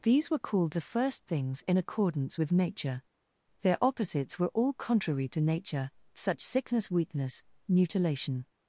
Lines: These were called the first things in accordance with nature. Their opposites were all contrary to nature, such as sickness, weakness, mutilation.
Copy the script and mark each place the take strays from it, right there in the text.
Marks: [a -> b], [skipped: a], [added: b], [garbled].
These were called the first things in accordance with nature. Their opposites were all contrary to nature, such [skipped: as] sickness, weakness, mutilation.